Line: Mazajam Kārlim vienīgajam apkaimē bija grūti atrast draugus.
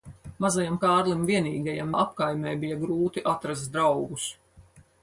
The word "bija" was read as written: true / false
true